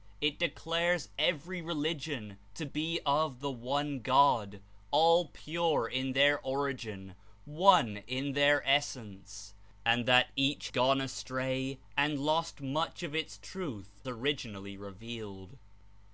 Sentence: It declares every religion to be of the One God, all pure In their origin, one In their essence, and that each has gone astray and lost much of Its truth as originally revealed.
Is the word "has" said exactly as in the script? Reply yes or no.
no